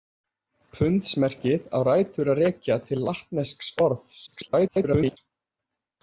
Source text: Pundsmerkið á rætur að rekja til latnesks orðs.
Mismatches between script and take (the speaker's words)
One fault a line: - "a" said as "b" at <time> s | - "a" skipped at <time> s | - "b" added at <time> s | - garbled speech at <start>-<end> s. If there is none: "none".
- garbled speech at 4.3-5.2 s